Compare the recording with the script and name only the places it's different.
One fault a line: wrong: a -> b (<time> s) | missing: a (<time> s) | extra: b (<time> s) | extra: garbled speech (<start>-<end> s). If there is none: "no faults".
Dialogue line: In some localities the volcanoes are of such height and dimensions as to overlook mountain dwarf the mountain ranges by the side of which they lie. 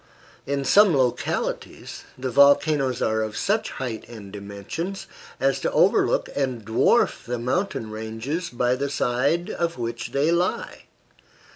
wrong: mountain -> and (6.3 s)